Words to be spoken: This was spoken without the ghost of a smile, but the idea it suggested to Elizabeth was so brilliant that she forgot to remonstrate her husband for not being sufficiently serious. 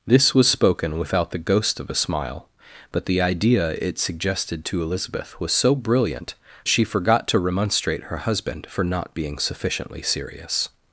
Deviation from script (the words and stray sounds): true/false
true